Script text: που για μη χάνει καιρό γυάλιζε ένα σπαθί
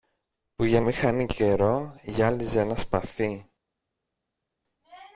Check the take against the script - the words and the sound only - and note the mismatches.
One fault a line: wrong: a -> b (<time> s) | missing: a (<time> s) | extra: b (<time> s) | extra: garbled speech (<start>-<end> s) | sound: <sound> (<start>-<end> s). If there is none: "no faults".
no faults